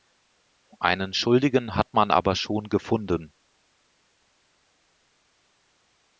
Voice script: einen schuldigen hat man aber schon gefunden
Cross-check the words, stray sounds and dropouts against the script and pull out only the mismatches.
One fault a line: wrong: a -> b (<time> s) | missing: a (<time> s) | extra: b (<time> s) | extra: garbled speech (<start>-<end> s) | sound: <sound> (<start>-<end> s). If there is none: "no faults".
no faults